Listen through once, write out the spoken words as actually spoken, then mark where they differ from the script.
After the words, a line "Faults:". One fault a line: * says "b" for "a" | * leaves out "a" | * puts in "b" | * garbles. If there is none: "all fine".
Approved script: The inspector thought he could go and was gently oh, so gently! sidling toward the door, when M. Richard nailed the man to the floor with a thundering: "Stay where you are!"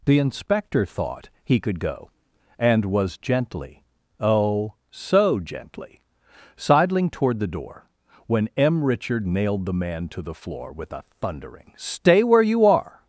The inspector thought he could go and was gently oh, so gently! sidling toward the door, when M. Richard nailed the man to the floor with a thundering: "Stay where you are!"
Faults:
all fine